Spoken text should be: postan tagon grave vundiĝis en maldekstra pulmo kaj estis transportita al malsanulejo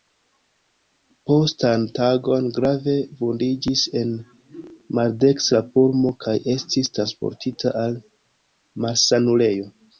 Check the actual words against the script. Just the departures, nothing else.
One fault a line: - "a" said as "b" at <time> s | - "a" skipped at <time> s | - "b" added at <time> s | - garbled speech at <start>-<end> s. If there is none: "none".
none